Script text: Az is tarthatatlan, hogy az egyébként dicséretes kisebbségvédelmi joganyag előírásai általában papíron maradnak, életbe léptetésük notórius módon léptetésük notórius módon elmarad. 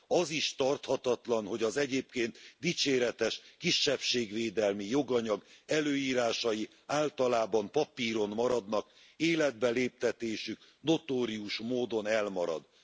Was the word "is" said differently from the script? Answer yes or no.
no